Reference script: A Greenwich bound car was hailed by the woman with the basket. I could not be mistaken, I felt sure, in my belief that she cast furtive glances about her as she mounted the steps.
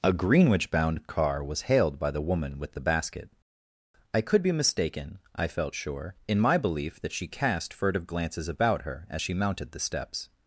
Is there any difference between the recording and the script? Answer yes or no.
yes